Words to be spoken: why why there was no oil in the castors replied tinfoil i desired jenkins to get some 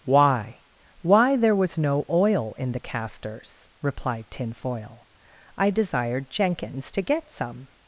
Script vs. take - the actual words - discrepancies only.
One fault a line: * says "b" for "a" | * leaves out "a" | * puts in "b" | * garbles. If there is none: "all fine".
all fine